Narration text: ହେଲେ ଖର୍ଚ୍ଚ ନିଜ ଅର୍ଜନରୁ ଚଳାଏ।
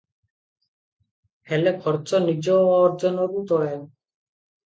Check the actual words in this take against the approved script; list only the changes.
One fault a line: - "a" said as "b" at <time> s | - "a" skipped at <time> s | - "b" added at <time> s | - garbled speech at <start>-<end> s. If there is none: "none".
none